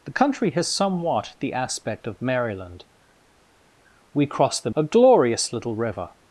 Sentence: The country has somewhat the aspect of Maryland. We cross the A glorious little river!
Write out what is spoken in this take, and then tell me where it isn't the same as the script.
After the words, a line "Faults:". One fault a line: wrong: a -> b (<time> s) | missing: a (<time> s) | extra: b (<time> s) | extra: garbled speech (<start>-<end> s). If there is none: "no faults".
The country has somewhat the aspect of Maryland. We cross the A glorious little river!
Faults:
no faults